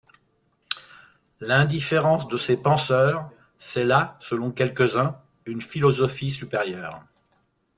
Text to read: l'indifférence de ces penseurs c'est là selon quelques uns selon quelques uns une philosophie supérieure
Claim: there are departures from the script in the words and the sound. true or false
true